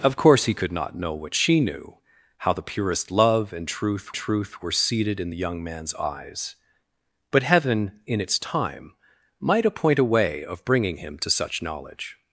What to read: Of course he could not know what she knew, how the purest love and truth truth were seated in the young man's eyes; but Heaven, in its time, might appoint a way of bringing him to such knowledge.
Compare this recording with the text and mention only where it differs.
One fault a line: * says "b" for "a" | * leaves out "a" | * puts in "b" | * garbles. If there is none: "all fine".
all fine